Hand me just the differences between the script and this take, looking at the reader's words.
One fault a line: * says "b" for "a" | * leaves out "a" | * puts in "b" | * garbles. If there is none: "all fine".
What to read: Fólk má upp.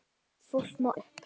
all fine